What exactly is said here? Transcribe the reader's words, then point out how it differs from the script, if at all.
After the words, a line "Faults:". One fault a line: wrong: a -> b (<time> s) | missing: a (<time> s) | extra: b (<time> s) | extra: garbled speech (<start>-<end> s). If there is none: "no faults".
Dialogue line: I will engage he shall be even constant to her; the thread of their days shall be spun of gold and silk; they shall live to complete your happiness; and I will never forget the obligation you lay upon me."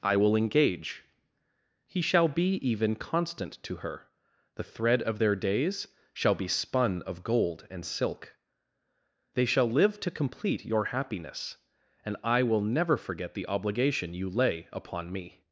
I will engage he shall be even constant to her; the thread of their days shall be spun of gold and silk; they shall live to complete your happiness; and I will never forget the obligation you lay upon me."
Faults:
no faults